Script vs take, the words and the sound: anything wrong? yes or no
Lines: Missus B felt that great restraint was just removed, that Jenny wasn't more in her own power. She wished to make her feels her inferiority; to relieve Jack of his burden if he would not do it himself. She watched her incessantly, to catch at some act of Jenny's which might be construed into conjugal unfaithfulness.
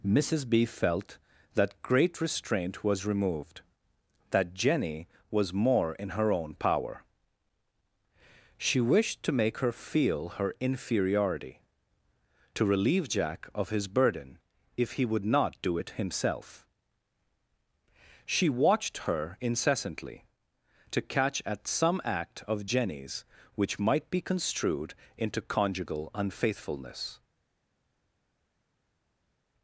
yes